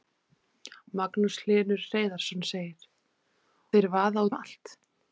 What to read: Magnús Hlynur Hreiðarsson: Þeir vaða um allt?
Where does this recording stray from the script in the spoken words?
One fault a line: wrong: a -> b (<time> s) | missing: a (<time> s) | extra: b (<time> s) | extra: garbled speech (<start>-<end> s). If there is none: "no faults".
no faults